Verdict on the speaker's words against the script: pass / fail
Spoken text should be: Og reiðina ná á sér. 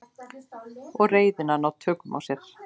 fail